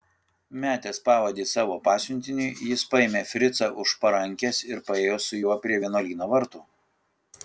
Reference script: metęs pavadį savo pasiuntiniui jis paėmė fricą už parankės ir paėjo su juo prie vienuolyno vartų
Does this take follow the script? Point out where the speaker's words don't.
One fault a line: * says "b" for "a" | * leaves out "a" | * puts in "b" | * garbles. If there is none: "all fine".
all fine